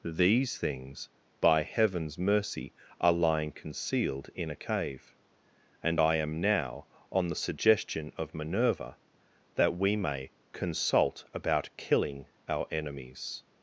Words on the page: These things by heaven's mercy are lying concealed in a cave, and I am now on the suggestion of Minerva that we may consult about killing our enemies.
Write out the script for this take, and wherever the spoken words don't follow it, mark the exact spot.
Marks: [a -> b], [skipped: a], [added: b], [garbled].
These things by heaven's mercy are lying concealed in a cave, and I am now on the suggestion of Minerva that we may consult about killing our enemies.